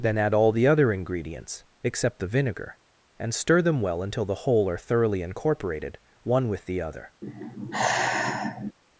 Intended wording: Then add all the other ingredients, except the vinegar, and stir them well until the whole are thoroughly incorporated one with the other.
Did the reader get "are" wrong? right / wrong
right